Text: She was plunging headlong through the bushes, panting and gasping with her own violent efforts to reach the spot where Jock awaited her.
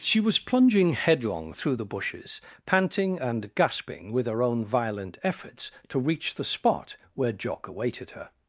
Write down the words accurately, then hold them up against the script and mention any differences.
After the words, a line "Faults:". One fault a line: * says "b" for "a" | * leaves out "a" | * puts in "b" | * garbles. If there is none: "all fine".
She was plunging headlong through the bushes, panting and gasping with her own violent efforts to reach the spot where Jock awaited her.
Faults:
all fine